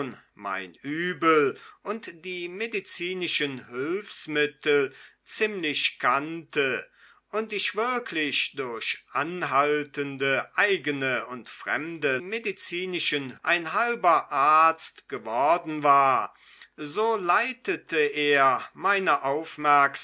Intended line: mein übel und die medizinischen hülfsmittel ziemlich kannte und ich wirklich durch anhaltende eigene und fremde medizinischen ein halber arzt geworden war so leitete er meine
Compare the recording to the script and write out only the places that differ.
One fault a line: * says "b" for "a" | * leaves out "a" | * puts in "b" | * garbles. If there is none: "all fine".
all fine